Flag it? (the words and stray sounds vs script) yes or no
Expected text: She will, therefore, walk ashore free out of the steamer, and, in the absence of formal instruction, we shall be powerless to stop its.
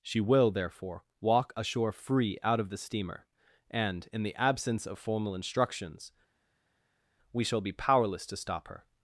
yes